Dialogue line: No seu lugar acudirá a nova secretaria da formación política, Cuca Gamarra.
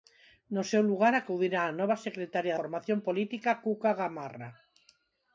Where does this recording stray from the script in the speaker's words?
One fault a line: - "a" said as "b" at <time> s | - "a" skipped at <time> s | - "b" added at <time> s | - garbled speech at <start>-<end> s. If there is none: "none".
- "da" skipped at 2.6 s